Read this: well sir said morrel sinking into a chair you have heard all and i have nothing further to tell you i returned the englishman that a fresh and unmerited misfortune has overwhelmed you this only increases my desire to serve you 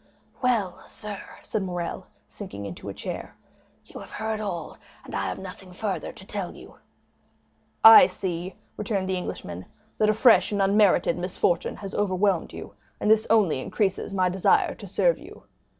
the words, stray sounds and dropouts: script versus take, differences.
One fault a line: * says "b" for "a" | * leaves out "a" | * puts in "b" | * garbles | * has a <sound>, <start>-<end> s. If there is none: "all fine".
* puts in "see"
* puts in "and"